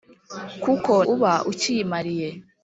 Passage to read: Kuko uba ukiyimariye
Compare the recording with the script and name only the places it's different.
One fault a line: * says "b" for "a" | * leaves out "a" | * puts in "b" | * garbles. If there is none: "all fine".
all fine